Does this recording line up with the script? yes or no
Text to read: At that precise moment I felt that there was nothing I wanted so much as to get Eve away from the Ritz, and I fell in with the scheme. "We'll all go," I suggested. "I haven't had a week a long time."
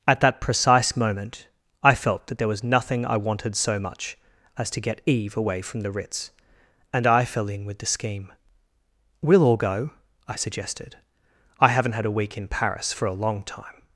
no